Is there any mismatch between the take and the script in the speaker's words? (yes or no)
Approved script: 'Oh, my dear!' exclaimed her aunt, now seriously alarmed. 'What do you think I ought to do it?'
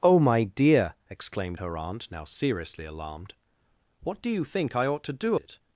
no